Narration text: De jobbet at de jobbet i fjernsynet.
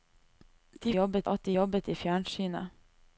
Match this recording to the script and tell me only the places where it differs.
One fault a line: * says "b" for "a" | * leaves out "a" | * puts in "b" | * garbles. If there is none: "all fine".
all fine